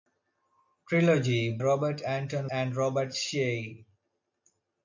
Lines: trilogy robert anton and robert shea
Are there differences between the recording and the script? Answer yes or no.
no